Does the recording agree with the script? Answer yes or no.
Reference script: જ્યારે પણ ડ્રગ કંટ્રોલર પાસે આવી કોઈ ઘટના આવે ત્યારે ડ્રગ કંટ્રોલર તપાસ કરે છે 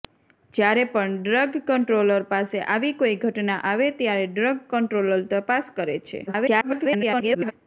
no